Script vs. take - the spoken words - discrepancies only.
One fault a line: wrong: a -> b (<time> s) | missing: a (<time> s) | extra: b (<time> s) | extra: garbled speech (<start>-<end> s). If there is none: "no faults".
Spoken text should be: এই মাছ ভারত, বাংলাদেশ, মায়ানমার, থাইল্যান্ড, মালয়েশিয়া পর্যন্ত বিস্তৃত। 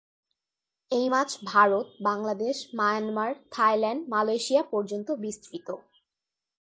no faults